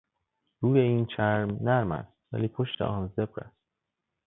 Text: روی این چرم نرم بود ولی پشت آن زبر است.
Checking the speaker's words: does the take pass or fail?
fail